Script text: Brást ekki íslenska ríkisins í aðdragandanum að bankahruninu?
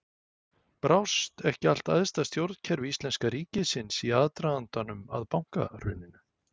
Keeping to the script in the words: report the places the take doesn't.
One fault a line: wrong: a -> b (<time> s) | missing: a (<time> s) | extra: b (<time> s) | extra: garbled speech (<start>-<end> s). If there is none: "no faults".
extra: allt æðsta stjórnkerfi (1.7 s)